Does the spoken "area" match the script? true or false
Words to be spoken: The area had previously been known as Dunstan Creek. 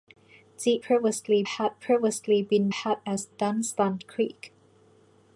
false